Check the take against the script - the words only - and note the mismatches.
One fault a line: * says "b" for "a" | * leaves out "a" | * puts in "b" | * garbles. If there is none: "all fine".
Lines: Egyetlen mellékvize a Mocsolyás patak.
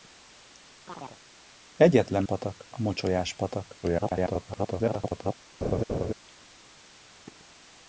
* says "patak" for "mellékvize"
* garbles